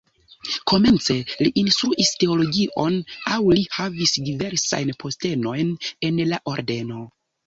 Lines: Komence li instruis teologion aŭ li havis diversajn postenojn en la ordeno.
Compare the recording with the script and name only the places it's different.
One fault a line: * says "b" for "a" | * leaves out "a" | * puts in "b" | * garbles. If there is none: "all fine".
all fine